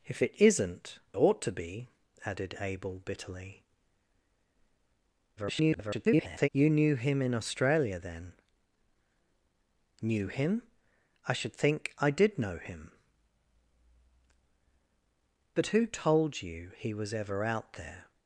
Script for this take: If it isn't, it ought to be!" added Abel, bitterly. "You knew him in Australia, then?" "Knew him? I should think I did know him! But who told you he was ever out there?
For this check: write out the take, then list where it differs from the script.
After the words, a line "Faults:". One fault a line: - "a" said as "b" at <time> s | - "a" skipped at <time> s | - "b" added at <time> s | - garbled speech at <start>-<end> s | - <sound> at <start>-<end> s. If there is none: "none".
If it isn't, ought to be!" added Abel, bitterly. [garbled] "You knew him in Australia, then?" "Knew him? I should think I did know him! But who told you he was ever out there?
Faults:
- "it" skipped at 1.0 s
- garbled speech at 5.4-6.5 s